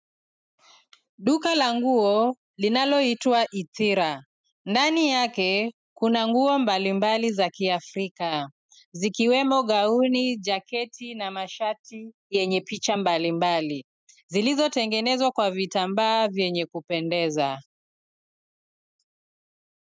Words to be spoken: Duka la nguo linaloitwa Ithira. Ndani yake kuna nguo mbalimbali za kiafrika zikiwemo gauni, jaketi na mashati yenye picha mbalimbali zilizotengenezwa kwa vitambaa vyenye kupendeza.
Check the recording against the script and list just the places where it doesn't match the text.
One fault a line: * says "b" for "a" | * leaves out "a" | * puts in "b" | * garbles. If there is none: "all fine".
all fine